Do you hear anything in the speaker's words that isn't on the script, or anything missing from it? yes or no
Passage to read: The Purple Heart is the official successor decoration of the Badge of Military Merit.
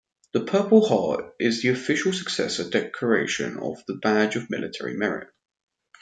no